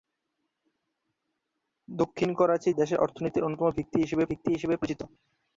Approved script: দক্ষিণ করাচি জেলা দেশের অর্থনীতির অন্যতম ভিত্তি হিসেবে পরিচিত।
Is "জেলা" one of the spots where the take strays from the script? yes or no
yes